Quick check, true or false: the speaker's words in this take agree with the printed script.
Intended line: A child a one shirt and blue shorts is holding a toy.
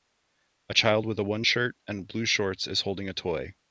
false